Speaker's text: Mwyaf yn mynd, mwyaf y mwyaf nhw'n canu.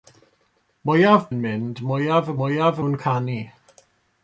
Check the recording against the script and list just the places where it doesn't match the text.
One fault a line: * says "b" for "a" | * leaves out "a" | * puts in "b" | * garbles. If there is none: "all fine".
all fine